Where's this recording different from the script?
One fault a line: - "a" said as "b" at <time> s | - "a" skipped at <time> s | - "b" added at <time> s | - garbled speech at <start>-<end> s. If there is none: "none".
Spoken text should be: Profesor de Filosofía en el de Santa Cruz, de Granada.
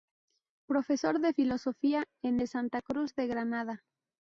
- "el" skipped at 2.4 s